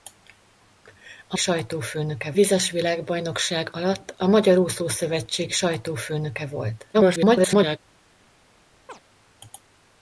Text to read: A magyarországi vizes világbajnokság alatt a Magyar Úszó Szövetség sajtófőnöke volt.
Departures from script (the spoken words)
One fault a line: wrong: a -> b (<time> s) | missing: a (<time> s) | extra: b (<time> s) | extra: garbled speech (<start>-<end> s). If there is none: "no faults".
wrong: magyarországi -> sajtófőnöke (1.4 s)
extra: garbled speech (6.9-7.8 s)